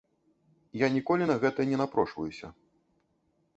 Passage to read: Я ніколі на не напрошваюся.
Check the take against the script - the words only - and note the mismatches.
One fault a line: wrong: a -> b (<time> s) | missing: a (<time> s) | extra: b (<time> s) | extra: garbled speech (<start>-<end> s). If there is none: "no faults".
extra: гэта (1.4 s)